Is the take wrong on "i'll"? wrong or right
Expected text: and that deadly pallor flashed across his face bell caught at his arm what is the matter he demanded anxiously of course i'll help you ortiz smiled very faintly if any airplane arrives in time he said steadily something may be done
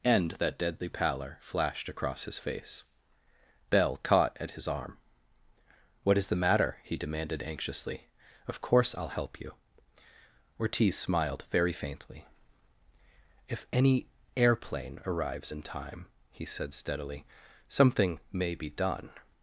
right